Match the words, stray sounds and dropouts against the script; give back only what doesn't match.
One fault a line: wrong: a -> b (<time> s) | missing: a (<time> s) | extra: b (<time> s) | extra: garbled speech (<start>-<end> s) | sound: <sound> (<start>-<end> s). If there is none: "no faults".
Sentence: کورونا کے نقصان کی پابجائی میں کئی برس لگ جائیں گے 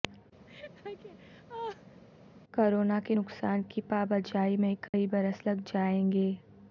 sound: laugh (0.5-2.0 s)
sound: dropout (4.9-4.9 s)